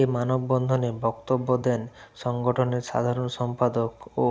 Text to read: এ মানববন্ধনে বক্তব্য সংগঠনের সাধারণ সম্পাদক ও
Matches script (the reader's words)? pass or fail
fail